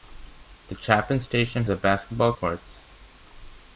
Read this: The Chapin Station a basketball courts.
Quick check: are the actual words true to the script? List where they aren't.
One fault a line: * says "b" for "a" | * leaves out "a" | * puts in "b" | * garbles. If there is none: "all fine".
all fine